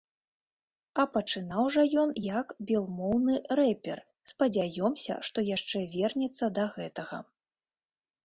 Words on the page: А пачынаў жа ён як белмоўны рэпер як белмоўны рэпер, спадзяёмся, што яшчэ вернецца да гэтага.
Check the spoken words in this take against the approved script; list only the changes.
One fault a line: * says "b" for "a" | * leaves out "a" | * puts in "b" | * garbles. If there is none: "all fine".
* leaves out "як белмоўны рэпер"